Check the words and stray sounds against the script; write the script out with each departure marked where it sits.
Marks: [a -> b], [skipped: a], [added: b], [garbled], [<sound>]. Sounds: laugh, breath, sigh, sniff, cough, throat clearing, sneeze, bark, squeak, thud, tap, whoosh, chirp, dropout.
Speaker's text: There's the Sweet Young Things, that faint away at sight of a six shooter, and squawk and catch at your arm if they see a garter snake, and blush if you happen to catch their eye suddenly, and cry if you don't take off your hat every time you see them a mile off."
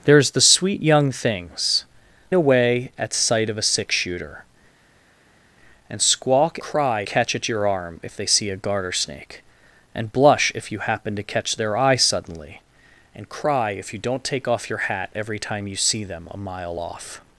There's the Sweet Young Things, [skipped: that faint] away at sight of a six shooter, and squawk [and -> cry] catch at your arm if they see a garter snake, and blush if you happen to catch their eye suddenly, and cry if you don't take off your hat every time you see them a mile off."